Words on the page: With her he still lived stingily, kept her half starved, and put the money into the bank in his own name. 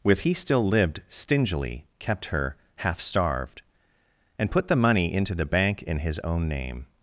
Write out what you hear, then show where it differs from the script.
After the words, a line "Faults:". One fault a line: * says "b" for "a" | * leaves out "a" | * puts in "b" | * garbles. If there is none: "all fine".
With he still lived stingily, kept her half starved, and put the money into the bank in his own name.
Faults:
* leaves out "her"